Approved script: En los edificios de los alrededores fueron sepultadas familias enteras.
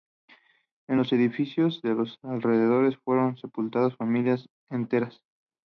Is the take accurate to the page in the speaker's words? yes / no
yes